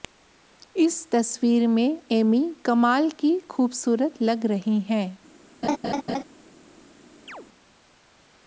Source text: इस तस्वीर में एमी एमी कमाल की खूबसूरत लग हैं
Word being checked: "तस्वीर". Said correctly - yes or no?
yes